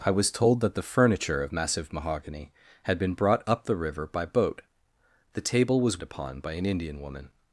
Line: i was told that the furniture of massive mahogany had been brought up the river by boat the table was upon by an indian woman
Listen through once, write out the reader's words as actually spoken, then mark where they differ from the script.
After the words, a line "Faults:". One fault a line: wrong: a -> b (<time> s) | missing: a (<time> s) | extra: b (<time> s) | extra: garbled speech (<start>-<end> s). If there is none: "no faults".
i was told that the furniture of massive mahogany had been brought up the river by boat the table was upon by an indian woman
Faults:
no faults